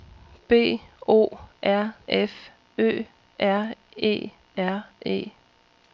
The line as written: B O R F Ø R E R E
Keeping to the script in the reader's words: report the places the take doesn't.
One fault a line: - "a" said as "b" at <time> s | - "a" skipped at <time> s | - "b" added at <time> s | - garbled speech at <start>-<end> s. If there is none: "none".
none